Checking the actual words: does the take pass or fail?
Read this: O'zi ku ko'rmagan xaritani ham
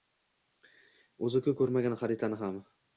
pass